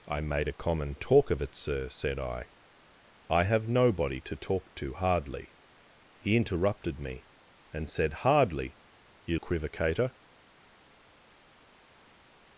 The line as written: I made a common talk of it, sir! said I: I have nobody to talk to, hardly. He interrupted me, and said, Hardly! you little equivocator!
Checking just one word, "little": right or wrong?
wrong